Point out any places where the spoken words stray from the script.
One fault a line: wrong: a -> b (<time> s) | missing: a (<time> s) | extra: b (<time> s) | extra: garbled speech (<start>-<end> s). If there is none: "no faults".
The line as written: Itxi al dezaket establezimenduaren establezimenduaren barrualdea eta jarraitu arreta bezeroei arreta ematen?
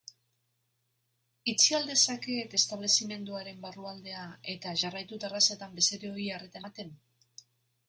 missing: establezimenduaren (3.6 s)
wrong: arreta -> terrazetan (5.3 s)